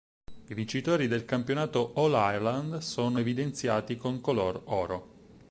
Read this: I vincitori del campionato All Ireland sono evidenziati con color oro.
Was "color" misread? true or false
false